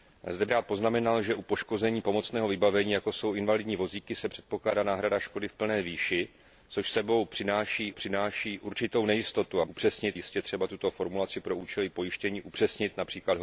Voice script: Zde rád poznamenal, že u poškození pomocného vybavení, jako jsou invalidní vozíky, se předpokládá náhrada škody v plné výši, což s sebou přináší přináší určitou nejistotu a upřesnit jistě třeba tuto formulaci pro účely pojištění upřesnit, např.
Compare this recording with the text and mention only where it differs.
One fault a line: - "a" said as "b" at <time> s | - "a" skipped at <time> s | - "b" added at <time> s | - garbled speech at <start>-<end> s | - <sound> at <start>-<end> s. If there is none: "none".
none